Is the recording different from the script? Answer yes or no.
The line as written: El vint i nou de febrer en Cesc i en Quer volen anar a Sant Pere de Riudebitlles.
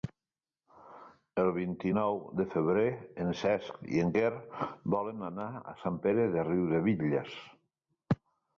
no